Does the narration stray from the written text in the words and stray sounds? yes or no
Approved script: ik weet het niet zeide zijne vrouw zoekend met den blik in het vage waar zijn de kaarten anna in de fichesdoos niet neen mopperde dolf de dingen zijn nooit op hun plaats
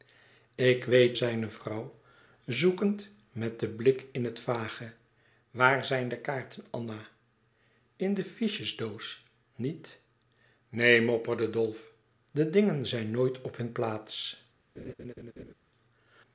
yes